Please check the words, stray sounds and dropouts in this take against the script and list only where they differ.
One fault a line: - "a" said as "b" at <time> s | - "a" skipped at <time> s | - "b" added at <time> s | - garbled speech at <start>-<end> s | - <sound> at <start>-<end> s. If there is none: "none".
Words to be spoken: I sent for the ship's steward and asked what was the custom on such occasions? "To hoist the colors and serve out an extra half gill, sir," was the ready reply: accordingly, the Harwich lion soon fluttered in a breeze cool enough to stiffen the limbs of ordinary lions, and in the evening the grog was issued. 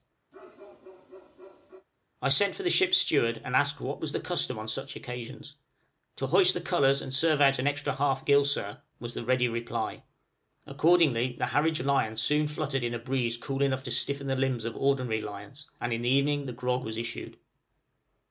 - bark at 0.3-1.9 s